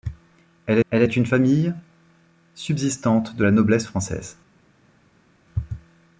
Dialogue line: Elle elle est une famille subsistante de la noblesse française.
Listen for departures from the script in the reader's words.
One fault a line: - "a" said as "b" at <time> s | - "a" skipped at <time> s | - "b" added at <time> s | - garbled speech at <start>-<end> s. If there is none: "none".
none